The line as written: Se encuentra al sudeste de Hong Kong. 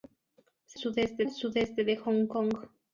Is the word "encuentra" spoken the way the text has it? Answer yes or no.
no